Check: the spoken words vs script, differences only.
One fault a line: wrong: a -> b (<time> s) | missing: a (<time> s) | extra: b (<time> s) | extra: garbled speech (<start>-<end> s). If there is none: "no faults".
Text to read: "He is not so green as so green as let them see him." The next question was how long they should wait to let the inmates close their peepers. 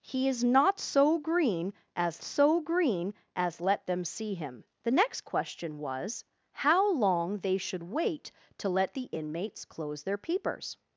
no faults